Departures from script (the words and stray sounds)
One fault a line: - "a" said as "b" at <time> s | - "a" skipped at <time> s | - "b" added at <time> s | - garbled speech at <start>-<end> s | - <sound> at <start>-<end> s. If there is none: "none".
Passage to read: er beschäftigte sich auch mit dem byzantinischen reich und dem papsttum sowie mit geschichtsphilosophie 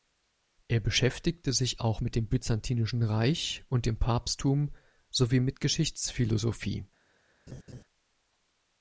- laugh at 7.5-7.8 s